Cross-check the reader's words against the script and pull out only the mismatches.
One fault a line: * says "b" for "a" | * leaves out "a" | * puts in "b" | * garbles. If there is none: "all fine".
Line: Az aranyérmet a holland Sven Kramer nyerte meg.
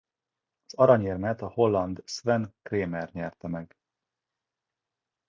all fine